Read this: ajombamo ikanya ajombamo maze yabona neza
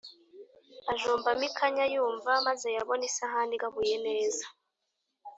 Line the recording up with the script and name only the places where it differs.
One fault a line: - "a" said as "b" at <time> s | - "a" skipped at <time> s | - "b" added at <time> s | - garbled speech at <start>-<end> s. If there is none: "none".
- "ajombamo" said as "yumva" at 1.9 s
- "isahani igabuye" added at 3.1 s